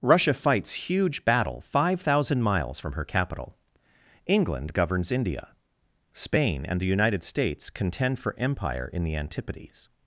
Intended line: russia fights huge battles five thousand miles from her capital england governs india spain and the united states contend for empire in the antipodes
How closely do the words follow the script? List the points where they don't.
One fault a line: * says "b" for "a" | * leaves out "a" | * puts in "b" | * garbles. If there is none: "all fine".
* says "battle" for "battles"